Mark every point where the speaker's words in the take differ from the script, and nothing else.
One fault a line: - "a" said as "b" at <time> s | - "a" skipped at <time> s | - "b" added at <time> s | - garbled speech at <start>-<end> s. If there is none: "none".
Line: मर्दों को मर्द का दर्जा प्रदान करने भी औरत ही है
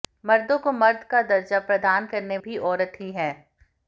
none